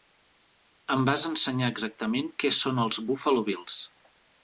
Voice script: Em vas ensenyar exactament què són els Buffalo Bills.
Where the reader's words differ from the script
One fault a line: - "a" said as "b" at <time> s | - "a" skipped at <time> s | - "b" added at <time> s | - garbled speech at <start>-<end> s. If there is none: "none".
none